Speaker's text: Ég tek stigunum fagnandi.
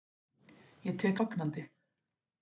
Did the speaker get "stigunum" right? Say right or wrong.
wrong